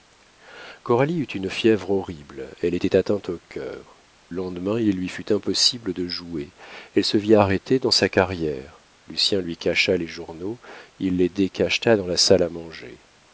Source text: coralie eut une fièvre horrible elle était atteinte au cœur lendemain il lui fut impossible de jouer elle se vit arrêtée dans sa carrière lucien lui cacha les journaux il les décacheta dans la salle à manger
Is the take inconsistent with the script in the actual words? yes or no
no